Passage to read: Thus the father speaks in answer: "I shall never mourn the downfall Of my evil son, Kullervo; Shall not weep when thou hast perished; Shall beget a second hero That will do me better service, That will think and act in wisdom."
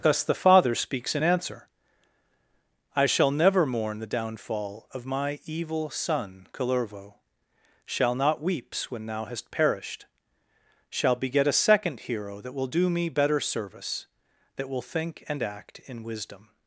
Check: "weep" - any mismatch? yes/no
yes